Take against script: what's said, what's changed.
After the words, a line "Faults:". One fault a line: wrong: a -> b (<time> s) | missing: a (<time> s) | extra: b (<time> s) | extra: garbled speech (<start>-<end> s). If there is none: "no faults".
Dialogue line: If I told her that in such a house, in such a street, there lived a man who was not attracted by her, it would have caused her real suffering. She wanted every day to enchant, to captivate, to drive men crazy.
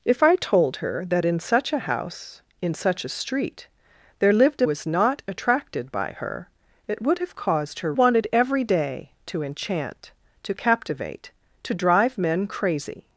If I told her that in such a house, in such a street, there lived a was not attracted by her, it would have caused her wanted every day to enchant, to captivate, to drive men crazy.
Faults:
missing: man who (4.7 s)
missing: real suffering She (7.9 s)